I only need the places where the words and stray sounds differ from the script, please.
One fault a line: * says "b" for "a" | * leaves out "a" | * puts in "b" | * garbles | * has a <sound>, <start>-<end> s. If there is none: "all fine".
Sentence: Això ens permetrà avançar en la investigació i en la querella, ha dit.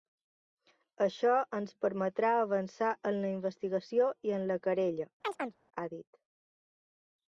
* has a chirp, 5.2-5.6 s